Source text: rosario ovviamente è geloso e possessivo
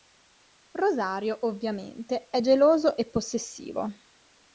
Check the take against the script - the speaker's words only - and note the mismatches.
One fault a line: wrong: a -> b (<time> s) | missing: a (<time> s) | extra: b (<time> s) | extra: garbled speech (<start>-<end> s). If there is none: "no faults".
no faults